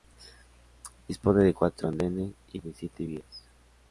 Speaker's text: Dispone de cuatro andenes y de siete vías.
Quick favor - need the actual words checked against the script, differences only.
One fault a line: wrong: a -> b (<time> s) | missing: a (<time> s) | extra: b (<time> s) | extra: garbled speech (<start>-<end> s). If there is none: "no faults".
no faults